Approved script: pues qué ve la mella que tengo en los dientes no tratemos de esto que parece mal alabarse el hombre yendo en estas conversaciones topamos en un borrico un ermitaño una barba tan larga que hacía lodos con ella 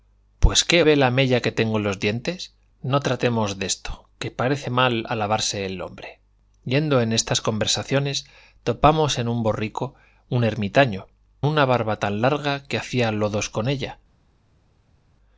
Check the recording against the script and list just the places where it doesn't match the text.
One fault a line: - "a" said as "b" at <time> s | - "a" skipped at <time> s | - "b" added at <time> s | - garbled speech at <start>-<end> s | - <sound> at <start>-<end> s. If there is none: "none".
none